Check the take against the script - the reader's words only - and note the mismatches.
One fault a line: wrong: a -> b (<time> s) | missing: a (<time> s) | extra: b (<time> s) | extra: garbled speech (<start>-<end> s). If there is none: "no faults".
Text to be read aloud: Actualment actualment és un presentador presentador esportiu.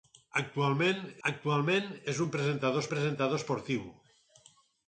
no faults